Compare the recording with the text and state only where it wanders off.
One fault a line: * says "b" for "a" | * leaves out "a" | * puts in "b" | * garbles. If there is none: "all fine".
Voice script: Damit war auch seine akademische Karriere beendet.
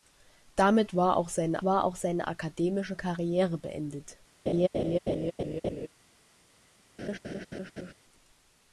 * puts in "war auch seine"